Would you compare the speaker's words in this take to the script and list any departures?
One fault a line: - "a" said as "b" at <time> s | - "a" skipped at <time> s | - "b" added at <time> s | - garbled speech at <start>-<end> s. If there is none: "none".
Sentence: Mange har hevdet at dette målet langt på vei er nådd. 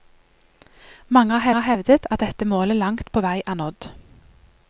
- "har" added at 1.5 s